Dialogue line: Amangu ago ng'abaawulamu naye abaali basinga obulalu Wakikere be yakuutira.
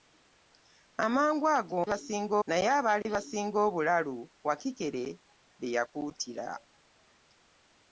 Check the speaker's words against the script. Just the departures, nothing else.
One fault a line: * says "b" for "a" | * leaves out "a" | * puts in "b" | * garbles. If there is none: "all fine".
* says "basinga" for "ng'abaawulamu"